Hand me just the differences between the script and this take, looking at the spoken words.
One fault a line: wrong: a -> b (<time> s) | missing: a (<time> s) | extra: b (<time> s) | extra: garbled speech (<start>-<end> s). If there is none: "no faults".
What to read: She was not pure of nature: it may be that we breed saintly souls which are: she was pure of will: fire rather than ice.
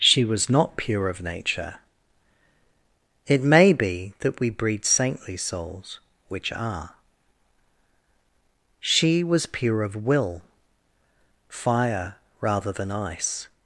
no faults